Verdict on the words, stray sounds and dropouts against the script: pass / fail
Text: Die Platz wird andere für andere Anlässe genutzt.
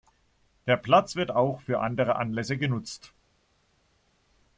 fail